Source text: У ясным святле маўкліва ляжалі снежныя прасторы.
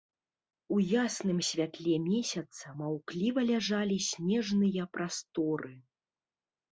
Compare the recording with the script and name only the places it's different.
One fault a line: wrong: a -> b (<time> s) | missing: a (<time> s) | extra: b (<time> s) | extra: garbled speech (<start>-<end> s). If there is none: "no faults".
extra: месяца (2.1 s)